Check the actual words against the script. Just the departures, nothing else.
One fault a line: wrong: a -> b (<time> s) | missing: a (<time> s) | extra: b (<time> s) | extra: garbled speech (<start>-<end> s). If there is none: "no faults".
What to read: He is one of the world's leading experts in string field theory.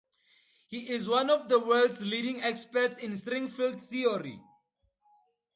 no faults